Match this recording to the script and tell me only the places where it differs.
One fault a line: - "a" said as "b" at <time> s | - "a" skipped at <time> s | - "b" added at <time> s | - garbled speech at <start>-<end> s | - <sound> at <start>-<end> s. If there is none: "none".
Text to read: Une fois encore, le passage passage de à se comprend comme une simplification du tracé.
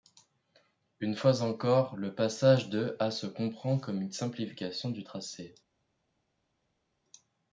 - "passage" skipped at 2.7 s